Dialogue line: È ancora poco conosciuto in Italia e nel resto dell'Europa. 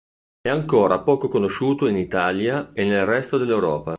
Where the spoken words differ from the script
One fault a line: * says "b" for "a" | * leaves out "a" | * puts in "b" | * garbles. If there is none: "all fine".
all fine